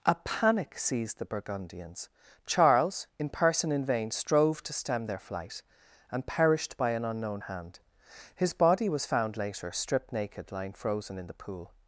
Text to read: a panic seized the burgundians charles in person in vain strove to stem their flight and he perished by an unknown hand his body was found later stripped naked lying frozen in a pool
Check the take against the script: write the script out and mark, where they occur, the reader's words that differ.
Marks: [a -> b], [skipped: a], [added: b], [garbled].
a panic seized the burgundians charles in person in vain strove to stem their flight and [skipped: he] perished by an unknown hand his body was found later stripped naked lying frozen in [a -> the] pool